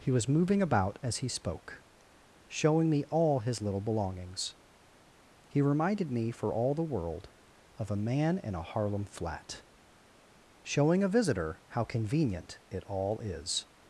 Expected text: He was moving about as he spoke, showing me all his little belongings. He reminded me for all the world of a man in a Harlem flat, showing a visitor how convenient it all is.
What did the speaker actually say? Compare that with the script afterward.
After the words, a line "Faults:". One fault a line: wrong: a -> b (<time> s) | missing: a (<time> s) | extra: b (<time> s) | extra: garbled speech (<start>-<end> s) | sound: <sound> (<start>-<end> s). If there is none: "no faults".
He was moving about as he spoke, showing me all his little belongings. He reminded me for all the world of a man in a Harlem flat, showing a visitor how convenient it all is.
Faults:
no faults